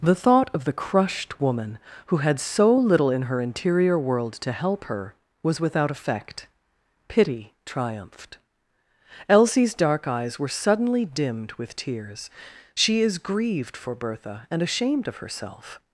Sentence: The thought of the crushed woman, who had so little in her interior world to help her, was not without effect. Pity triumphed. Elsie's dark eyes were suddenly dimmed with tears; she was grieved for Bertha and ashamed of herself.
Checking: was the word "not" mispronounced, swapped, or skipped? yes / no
yes